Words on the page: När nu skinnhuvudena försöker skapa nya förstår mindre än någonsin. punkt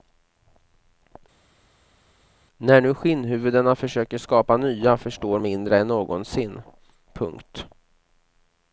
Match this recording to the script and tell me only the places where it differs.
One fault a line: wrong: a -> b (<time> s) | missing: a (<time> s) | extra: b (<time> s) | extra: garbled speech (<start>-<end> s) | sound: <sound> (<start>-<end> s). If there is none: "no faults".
no faults